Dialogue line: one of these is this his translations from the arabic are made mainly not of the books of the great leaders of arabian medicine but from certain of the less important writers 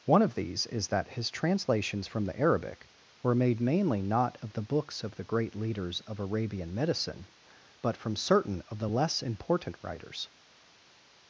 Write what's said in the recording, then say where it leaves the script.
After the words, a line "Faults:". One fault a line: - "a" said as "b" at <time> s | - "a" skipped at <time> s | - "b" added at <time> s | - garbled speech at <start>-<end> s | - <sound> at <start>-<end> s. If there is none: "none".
one of these is that his translations from the arabic were made mainly not of the books of the great leaders of arabian medicine but from certain of the less important writers
Faults:
- "this" said as "that" at 0.9 s
- "are" said as "were" at 3.2 s